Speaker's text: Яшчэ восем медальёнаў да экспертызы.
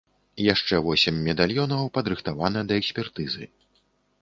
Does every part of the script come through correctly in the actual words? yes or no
no